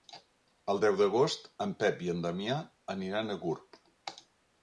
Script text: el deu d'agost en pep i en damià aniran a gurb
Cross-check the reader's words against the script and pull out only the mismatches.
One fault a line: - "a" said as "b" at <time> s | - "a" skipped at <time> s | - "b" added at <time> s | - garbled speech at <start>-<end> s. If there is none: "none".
none